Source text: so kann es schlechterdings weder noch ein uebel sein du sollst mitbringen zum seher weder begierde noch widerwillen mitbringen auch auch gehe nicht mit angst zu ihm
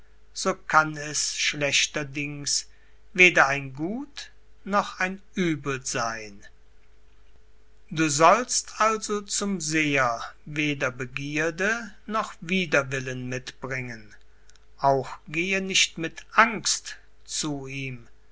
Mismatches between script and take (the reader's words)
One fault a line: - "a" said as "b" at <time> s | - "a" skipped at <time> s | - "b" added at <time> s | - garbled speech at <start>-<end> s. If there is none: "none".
- "ein gut" added at 3.5 s
- "mitbringen" said as "also" at 8.8 s
- "auch" skipped at 15.1 s